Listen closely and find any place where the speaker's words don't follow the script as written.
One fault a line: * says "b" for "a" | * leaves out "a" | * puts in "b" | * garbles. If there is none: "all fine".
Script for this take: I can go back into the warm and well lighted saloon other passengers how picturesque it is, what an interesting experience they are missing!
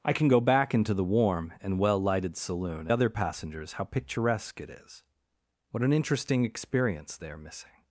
all fine